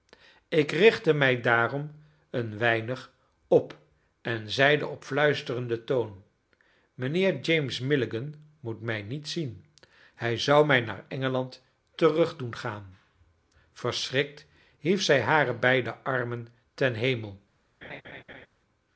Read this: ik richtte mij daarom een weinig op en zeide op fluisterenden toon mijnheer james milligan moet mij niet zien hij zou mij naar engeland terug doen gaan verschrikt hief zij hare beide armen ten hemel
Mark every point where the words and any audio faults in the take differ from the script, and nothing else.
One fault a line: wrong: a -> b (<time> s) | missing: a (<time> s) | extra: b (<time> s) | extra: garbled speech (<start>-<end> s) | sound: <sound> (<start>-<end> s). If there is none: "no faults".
sound: laugh (17.8-18.5 s)